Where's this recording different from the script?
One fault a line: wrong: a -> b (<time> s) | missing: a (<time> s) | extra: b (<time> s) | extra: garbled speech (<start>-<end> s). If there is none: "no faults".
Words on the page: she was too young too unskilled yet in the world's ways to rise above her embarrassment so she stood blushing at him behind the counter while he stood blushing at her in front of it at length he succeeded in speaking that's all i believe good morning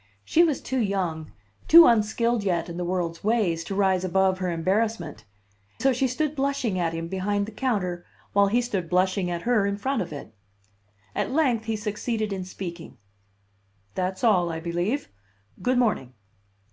no faults